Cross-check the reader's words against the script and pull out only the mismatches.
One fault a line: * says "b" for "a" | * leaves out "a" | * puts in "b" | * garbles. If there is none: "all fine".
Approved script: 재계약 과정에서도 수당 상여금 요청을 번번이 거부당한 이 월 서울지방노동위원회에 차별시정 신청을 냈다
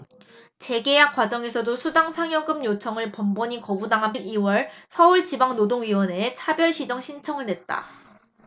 all fine